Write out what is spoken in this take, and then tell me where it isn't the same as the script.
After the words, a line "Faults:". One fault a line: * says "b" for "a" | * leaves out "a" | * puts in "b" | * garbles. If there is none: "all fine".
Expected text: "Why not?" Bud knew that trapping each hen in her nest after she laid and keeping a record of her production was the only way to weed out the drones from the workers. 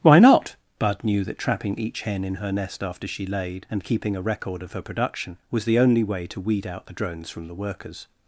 "Why not?" Bud knew that trapping each hen in her nest after she laid and keeping a record of her production was the only way to weed out the drones from the workers.
Faults:
all fine